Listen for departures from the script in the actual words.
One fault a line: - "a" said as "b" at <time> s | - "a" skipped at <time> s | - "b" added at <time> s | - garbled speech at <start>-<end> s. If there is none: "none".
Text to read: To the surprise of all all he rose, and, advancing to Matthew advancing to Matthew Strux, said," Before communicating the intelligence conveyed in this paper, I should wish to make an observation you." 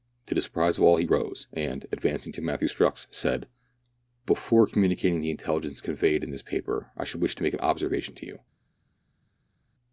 - "all" skipped at 1.0 s
- "advancing to Matthew" skipped at 2.7 s
- "to" added at 8.1 s